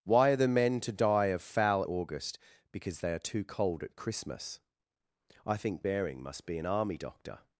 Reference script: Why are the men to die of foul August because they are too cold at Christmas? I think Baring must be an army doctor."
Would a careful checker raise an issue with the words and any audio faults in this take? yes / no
no